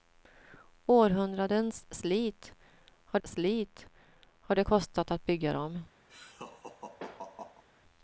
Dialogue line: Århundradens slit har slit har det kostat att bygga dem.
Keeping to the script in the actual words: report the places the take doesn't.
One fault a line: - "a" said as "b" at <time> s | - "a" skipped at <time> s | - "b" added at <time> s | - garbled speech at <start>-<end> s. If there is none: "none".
none